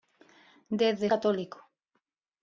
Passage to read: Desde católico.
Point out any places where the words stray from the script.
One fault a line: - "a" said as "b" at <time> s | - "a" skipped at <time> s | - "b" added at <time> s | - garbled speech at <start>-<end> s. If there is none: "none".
none